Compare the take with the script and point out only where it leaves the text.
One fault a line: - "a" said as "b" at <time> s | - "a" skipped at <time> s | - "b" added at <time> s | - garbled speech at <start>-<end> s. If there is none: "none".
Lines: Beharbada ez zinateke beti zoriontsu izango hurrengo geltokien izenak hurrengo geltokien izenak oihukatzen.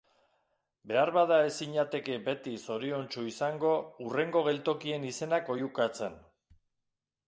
- "hurrengo geltokien izenak" skipped at 5.6 s